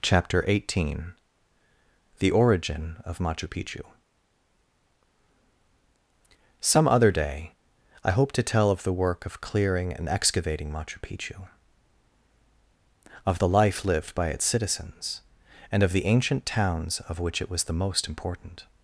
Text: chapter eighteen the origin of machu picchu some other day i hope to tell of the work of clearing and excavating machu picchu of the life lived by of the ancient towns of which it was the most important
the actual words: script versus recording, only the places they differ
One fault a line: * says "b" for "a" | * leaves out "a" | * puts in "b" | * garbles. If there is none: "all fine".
* puts in "its citizens and"